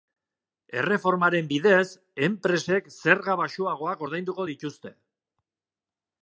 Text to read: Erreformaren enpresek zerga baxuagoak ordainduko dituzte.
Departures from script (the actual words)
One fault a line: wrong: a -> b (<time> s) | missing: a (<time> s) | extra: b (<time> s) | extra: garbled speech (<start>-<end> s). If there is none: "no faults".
extra: bidez (1.5 s)